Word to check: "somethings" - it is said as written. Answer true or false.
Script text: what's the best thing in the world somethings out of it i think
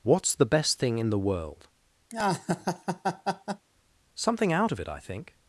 false